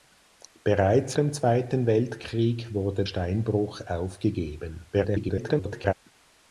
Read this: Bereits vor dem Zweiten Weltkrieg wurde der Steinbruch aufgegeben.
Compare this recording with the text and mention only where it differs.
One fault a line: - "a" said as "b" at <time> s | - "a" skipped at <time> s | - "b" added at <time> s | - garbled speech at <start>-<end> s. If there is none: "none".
- "vor" skipped at 1.1 s
- "der" skipped at 3.0 s
- garbled speech at 4.9-5.9 s